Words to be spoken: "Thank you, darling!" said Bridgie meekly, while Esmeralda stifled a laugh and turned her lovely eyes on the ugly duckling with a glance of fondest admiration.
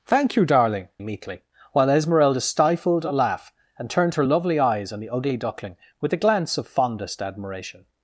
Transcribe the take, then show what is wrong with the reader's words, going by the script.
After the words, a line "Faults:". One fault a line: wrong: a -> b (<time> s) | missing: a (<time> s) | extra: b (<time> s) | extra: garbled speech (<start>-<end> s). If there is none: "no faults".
"Thank you, darling!" meekly, while Esmeralda stifled a laugh and turned her lovely eyes on the ugly duckling with a glance of fondest admiration.
Faults:
missing: said Bridgie (0.9 s)